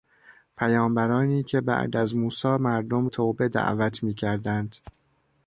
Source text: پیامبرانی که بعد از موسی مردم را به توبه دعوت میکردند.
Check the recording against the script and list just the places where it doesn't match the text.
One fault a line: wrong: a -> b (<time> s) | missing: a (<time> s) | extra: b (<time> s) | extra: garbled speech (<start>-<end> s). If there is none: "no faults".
missing: را به (3.1 s)